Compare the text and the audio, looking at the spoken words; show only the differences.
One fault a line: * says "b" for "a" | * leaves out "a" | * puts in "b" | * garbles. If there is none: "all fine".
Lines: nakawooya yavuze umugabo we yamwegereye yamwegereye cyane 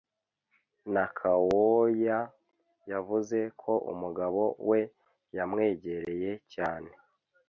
* puts in "ko"
* leaves out "yamwegereye"